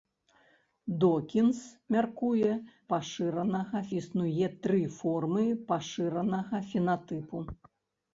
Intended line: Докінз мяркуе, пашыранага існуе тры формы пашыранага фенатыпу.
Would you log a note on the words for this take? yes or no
no